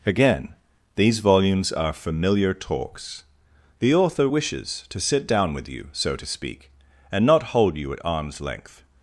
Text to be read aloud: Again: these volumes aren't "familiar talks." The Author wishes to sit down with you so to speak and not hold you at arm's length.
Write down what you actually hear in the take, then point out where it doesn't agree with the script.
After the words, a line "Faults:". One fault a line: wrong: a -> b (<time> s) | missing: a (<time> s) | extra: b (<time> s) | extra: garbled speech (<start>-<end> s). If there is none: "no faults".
Again: these volumes are "familiar talks." The Author wishes to sit down with you so to speak and not hold you at arm's length.
Faults:
wrong: aren't -> are (1.7 s)